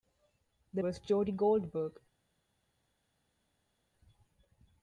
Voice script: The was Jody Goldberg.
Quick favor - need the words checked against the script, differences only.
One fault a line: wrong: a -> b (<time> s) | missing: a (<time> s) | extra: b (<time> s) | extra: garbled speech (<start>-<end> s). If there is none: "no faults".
no faults